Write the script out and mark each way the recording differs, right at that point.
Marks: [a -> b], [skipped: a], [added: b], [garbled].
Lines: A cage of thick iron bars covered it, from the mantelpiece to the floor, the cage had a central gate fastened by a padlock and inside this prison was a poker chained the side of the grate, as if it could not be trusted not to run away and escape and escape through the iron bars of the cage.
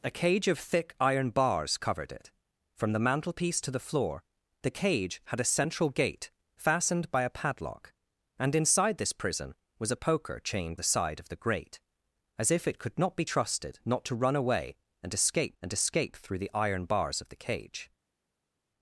A cage of thick iron bars covered it, from the mantelpiece to the floor, the cage had a central gate fastened by a padlock and inside this prison was a poker chained the side of the grate, as if it could not be trusted not to run away and escape and escape through the iron bars of the cage.